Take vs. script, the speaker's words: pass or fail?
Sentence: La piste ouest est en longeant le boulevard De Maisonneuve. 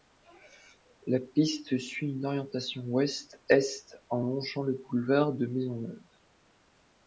fail